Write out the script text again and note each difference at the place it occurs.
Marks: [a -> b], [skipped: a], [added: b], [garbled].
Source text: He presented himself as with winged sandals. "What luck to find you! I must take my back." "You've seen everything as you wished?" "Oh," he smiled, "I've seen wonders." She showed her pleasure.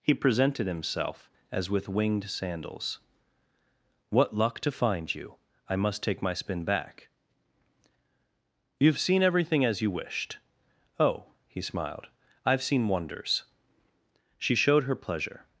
He presented himself as with winged sandals. "What luck to find you! I must take my [added: spin] back." "You've seen everything as you wished?" "Oh," he smiled, "I've seen wonders." She showed her pleasure.